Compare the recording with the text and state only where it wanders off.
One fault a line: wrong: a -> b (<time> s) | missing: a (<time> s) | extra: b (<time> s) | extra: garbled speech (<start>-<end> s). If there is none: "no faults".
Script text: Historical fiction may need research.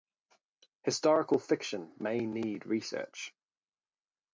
no faults